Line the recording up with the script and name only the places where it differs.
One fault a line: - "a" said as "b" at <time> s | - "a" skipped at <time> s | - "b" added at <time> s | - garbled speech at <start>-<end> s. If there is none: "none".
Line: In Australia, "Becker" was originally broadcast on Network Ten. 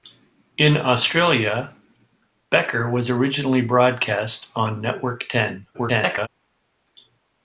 - garbled speech at 5.7-6.3 s